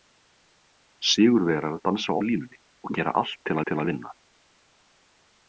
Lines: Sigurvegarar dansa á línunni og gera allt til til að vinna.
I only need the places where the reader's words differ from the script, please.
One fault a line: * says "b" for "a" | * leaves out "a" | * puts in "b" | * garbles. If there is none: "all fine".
all fine